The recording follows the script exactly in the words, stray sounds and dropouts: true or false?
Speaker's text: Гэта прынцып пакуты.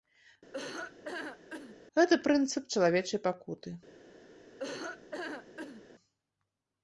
false